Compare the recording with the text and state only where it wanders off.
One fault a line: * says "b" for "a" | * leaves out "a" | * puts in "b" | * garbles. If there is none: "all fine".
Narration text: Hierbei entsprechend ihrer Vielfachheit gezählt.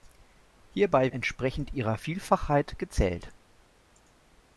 all fine